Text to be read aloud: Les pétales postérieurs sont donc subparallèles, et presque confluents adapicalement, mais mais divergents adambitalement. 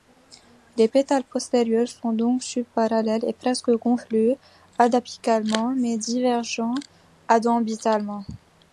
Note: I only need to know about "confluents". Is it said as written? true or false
true